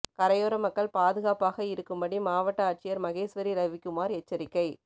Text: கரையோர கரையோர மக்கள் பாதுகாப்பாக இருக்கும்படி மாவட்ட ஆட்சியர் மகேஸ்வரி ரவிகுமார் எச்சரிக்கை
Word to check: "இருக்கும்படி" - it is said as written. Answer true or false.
true